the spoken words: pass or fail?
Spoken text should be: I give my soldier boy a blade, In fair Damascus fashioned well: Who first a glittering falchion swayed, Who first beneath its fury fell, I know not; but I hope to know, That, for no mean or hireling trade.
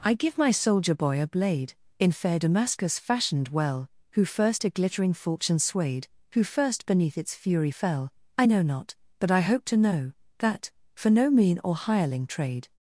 pass